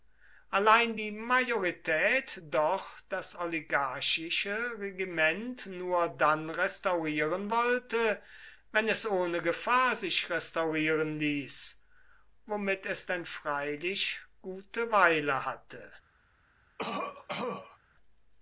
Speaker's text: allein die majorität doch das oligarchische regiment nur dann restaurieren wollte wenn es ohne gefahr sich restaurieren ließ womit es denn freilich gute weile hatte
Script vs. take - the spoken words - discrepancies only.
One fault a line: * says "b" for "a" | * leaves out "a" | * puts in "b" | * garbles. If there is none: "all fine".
all fine